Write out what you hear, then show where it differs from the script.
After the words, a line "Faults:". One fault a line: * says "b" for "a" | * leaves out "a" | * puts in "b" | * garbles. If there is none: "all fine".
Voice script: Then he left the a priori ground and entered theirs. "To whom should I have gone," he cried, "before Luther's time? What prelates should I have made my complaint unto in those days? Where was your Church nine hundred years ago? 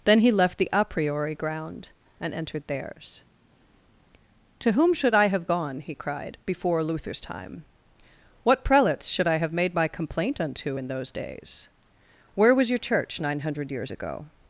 Then he left the a priori ground and entered theirs. "To whom should I have gone," he cried, "before Luther's time? What prelates should I have made my complaint unto in those days? Where was your Church nine hundred years ago?
Faults:
all fine